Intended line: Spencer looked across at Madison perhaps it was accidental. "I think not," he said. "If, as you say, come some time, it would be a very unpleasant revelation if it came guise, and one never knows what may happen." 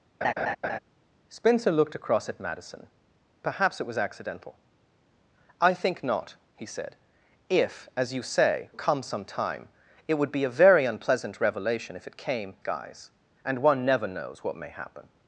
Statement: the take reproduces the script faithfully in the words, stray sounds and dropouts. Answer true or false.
false